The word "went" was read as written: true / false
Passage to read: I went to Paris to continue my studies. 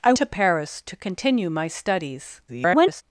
false